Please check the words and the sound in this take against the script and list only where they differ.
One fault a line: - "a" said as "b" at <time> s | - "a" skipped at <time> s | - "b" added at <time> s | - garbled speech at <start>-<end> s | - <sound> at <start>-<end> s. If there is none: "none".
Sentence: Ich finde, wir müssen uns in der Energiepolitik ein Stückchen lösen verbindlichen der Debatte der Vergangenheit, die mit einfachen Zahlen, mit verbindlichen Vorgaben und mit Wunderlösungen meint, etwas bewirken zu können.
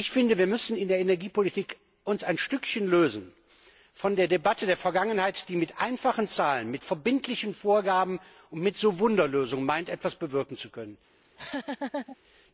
- "verbindlichen" said as "von" at 3.9 s
- laugh at 11.2-12.2 s